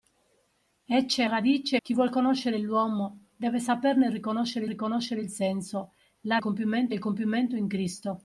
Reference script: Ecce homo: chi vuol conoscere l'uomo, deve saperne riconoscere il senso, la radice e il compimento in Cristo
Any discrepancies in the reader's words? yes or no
yes